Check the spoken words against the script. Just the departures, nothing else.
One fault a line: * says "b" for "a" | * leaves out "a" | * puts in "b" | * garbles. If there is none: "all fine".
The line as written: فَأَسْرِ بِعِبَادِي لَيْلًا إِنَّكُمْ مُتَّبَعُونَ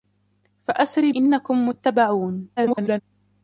* leaves out "بِعِبَادِي لَيْلًا"
* garbles